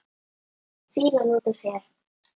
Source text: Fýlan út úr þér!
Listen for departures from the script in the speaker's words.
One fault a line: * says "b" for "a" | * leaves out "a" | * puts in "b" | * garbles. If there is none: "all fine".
all fine